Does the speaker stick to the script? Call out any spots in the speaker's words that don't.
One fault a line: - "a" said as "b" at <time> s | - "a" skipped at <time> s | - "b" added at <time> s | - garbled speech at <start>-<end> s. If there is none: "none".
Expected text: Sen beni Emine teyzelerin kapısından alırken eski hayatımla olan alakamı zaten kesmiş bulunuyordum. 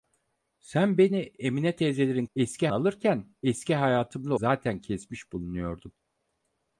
- "kapısından" said as "eski" at 2.3 s
- "olan alakamı" skipped at 4.3 s